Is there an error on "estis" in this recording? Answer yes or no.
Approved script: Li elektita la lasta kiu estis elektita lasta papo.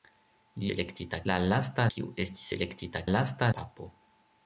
no